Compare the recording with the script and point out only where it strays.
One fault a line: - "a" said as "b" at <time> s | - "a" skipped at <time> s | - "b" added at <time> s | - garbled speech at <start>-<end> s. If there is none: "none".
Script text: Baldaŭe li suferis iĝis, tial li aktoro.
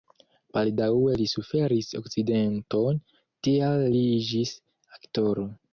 - "iĝis" said as "akcidenton" at 2.0 s
- "iĝis" added at 4.2 s